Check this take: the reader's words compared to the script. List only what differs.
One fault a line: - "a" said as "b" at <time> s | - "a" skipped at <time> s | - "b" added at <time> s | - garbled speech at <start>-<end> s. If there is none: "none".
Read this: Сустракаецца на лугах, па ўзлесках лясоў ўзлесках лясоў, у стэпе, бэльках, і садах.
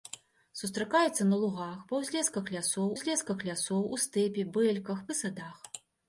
none